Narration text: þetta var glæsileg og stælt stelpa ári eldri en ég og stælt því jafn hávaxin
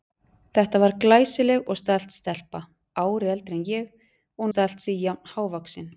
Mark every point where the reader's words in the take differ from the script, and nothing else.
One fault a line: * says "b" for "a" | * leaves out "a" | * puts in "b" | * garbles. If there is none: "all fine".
all fine